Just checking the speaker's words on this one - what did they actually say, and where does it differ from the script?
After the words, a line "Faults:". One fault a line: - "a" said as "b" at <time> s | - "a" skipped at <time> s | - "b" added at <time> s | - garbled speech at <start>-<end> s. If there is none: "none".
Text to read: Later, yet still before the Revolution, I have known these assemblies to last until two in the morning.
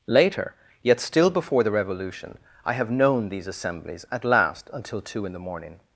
Later, yet still before the Revolution, I have known these assemblies at last until two in the morning.
Faults:
- "to" said as "at" at 4.1 s